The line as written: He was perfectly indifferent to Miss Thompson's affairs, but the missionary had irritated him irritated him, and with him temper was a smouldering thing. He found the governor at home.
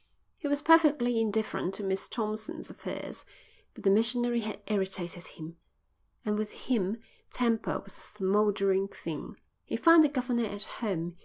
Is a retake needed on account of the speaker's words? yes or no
yes